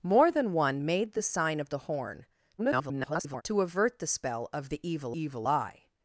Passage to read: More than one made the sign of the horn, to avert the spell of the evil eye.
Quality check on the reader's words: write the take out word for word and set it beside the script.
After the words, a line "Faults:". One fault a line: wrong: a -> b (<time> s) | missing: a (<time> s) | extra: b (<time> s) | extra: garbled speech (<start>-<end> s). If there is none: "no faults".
More than one made the sign of the horn, [garbled] to avert the spell of the evil evil eye.
Faults:
extra: garbled speech (2.6-3.4 s)
extra: evil (5.2 s)